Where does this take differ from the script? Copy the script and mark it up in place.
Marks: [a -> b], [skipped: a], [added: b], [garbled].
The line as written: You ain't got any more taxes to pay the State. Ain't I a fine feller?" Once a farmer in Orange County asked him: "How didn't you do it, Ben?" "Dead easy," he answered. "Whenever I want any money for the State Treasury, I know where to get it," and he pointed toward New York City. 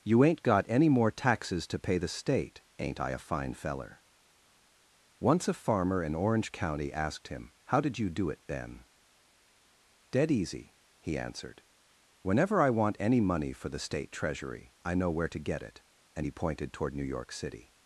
You ain't got any more taxes to pay the State. Ain't I a fine feller?" Once a farmer in Orange County asked him: "How [didn't -> did] you do it, Ben?" "Dead easy," he answered. "Whenever I want any money for the State Treasury, I know where to get it," and he pointed toward New York City.